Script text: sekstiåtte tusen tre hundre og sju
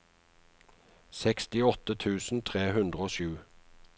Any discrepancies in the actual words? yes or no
no